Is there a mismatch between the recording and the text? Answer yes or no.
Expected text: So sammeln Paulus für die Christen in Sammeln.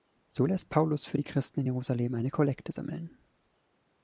yes